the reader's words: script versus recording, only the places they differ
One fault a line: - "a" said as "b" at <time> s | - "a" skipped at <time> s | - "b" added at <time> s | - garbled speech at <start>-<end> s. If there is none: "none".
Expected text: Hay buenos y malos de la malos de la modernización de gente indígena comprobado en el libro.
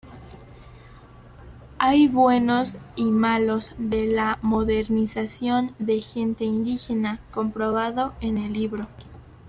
- "malos de la" skipped at 4.4 s